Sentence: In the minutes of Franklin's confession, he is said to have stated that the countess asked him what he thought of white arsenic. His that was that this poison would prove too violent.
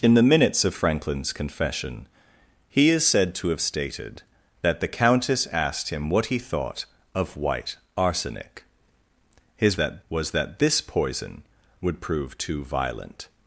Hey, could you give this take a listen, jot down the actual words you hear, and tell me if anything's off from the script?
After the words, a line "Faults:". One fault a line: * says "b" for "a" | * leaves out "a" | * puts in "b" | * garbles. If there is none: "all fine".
In the minutes of Franklin's confession, he is said to have stated that the countess asked him what he thought of white arsenic. His that was that this poison would prove too violent.
Faults:
all fine